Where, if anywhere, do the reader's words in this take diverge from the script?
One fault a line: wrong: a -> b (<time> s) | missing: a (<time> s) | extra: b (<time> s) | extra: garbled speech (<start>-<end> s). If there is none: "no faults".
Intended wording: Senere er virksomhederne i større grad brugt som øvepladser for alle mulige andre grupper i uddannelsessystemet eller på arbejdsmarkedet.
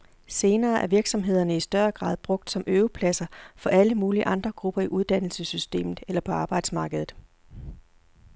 no faults